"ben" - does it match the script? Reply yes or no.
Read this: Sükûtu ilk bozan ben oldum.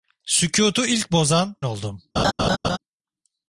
no